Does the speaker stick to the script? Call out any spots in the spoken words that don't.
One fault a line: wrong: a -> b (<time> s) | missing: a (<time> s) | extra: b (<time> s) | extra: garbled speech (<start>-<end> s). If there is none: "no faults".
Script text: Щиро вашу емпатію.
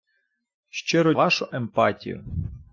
no faults